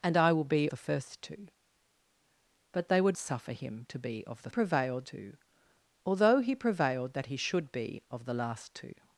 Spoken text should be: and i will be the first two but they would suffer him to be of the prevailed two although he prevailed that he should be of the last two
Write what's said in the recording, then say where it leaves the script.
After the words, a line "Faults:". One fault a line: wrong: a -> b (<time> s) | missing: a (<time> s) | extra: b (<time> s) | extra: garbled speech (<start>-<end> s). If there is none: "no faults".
and i will be the first two but they would suffer him to be of the prevailed two although he prevailed that he should be of the last two
Faults:
no faults